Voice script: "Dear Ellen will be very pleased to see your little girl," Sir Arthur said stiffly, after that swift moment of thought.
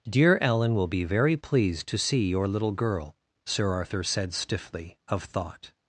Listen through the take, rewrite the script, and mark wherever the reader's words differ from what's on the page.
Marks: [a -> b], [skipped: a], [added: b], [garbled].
"Dear Ellen will be very pleased to see your little girl," Sir Arthur said stiffly, [skipped: after that swift moment] of thought.